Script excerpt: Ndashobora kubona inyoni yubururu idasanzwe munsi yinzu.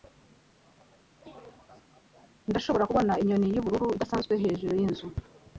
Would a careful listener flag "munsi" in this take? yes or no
yes